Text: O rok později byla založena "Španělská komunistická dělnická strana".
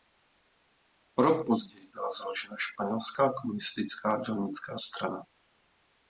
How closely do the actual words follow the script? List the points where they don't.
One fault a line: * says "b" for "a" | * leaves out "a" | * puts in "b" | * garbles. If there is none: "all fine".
all fine